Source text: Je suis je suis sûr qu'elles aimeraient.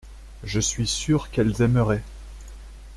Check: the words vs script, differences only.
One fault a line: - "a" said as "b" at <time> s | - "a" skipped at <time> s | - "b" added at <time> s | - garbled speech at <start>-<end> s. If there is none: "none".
- "je suis" skipped at 0.9 s